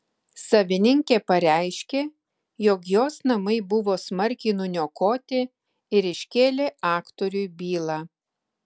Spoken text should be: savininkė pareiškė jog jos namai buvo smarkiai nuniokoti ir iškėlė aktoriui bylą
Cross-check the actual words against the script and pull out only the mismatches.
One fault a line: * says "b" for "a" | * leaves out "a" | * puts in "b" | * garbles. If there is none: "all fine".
all fine